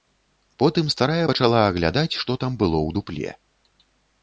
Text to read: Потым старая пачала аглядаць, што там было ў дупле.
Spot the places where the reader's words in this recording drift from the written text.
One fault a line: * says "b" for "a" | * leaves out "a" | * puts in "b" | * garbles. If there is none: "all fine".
all fine